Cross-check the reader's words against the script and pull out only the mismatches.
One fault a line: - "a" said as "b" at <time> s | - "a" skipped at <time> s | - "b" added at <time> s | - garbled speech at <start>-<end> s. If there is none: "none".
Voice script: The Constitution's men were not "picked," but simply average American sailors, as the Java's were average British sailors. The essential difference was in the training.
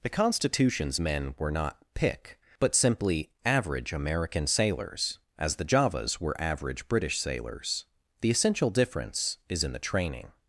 - "picked" said as "pick" at 1.9 s
- "was" said as "is" at 9.5 s